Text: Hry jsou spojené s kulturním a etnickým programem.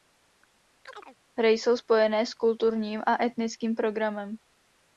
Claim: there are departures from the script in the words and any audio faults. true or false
true